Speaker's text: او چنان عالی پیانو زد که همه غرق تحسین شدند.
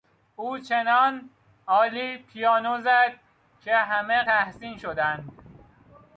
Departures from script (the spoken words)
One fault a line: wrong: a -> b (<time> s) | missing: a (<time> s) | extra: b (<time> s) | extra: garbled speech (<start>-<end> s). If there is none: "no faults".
missing: غرق (4.2 s)